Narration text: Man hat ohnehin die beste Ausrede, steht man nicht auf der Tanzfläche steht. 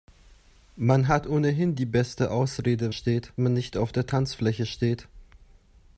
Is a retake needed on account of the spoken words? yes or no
no